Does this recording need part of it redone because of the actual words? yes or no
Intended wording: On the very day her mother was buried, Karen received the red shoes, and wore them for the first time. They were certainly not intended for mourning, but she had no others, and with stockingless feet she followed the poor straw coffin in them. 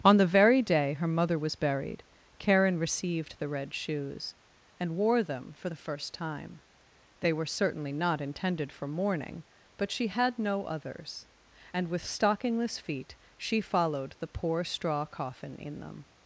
no